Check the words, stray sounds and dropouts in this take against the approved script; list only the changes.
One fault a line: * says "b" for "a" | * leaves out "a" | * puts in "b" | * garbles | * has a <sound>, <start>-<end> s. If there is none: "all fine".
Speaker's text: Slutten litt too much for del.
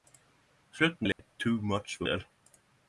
* has a dropout, 1.1-1.2 s